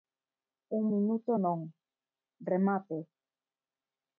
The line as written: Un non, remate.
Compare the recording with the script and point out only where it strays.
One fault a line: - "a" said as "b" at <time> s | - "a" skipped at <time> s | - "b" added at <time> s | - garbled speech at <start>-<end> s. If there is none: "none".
- "minuto" added at 0.9 s